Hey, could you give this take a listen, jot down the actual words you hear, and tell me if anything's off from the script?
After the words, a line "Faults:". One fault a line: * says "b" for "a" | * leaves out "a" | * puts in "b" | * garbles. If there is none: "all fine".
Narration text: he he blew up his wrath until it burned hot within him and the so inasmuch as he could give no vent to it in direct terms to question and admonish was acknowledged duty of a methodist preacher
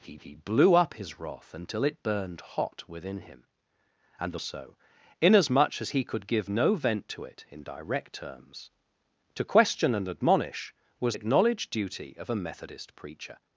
he he blew up his wrath until it burned hot within him and the so inasmuch as he could give no vent to it in direct terms to question and admonish was acknowledged duty of a methodist preacher
Faults:
all fine